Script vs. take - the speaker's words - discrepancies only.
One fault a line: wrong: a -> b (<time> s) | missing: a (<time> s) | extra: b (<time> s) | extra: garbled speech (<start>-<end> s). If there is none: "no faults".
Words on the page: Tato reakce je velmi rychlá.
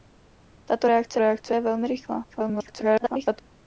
extra: reakce (1.2 s)
extra: garbled speech (2.3-3.4 s)